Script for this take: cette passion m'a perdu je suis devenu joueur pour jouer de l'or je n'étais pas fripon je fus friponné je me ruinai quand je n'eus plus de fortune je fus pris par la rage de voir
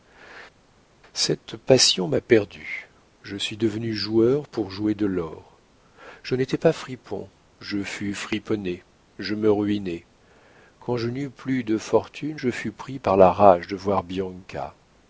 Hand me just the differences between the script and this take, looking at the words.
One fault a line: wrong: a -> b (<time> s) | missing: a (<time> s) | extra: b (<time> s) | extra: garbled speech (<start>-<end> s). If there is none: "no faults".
no faults